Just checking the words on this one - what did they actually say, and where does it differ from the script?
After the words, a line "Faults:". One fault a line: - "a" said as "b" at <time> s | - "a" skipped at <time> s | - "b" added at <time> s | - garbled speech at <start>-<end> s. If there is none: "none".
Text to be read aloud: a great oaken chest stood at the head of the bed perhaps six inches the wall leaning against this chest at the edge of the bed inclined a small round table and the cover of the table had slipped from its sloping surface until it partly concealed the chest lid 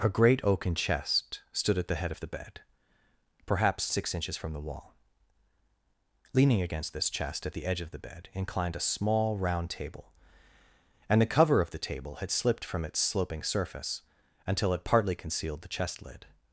a great oaken chest stood at the head of the bed perhaps six inches from the wall leaning against this chest at the edge of the bed inclined a small round table and the cover of the table had slipped from its sloping surface until it partly concealed the chest lid
Faults:
- "from" added at 4.4 s